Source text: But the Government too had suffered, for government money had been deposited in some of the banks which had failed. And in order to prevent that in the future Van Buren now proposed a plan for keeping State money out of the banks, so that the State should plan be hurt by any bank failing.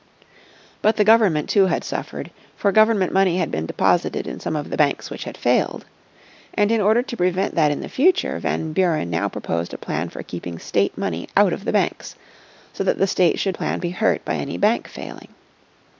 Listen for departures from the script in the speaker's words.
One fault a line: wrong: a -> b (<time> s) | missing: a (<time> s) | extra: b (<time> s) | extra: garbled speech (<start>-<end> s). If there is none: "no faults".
no faults